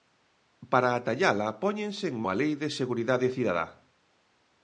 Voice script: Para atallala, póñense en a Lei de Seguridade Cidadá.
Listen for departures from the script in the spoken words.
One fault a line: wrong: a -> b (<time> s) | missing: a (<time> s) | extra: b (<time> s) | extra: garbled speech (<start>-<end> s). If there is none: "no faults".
no faults